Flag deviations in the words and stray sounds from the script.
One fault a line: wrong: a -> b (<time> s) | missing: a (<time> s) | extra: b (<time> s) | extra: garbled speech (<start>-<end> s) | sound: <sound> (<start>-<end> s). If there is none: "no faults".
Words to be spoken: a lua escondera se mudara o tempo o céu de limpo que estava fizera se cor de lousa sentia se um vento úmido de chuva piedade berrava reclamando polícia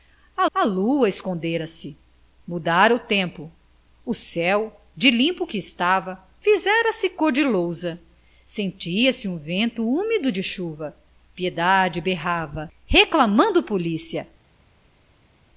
extra: a (0.5 s)